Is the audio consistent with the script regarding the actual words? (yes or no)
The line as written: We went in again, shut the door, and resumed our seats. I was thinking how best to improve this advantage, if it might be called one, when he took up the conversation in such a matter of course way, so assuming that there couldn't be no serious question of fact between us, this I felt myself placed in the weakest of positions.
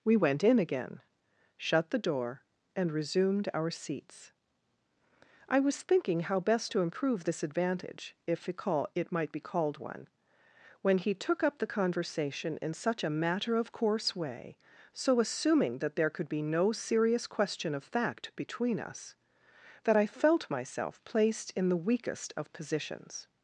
no